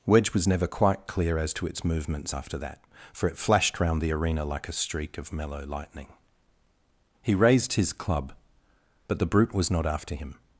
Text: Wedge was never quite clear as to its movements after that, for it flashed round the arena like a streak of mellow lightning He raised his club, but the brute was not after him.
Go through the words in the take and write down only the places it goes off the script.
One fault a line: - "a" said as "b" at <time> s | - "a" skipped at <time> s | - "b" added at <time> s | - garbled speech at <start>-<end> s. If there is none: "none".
none